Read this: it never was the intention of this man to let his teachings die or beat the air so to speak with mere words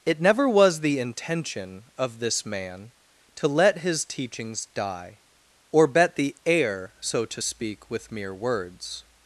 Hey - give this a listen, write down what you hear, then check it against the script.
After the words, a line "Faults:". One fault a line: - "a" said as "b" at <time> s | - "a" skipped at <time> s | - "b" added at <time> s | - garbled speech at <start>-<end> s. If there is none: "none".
it never was the intention of this man to let his teachings die or bet the air so to speak with mere words
Faults:
- "beat" said as "bet" at 5.8 s